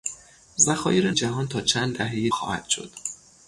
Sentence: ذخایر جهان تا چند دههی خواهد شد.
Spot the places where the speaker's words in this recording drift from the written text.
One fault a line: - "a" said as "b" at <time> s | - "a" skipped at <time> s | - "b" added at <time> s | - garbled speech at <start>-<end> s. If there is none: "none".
none